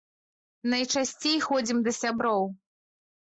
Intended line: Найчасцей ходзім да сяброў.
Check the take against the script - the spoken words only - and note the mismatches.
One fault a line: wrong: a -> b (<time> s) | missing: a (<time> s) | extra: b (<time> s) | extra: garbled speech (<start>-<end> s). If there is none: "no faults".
no faults